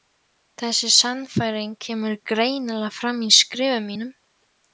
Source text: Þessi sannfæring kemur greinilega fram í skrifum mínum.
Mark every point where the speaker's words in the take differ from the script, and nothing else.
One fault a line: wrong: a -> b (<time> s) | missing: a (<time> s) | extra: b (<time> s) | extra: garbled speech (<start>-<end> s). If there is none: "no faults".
no faults